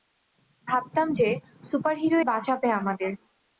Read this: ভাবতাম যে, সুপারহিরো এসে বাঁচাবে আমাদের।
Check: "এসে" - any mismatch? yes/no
yes